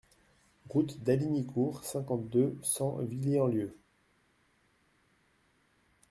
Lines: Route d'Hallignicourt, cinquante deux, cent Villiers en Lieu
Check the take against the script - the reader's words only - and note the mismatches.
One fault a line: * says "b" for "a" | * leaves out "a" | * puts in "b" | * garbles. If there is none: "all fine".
all fine